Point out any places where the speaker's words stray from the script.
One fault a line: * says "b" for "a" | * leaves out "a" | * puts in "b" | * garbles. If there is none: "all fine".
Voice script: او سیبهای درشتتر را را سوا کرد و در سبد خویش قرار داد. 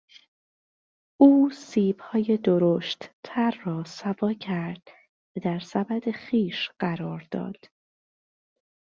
* leaves out "را"